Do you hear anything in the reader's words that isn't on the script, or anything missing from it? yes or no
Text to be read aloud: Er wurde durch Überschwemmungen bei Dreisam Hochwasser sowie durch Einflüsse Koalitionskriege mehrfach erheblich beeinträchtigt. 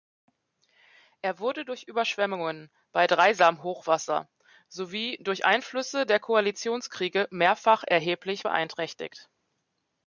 yes